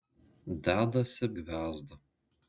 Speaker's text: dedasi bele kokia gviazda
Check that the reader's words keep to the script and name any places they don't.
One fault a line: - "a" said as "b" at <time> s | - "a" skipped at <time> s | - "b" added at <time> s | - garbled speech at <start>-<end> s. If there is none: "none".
- "bele kokia" skipped at 1.2 s